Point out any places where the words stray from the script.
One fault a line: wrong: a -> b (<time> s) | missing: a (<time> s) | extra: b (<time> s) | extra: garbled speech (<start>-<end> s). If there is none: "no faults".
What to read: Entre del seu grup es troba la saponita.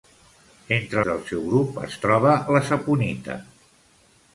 no faults